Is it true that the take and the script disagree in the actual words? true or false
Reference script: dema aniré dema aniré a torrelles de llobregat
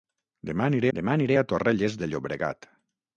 false